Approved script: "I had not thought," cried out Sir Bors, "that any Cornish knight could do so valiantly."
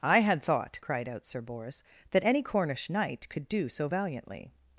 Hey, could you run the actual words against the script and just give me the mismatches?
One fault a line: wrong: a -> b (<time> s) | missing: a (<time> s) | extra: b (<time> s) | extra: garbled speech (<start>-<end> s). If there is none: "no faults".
missing: not (0.4 s)